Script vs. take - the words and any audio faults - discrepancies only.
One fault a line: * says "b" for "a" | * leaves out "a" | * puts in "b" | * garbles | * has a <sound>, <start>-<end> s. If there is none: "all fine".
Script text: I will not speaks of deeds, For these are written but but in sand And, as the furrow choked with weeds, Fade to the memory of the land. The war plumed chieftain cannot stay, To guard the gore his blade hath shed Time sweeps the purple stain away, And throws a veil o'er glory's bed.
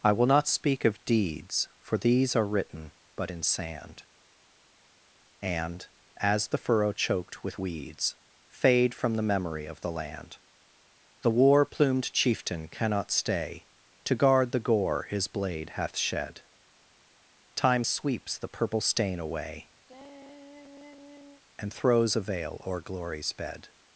* says "speak" for "speaks"
* leaves out "but"
* says "from" for "to"
* has a sigh, 19.9-21.4 s